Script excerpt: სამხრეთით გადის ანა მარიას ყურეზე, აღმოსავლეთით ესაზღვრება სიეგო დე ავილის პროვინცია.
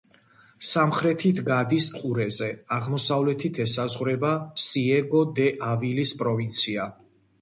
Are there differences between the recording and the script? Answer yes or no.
yes